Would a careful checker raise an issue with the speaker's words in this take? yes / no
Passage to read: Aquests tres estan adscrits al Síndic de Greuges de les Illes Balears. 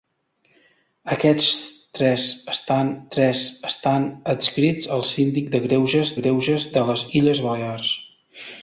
yes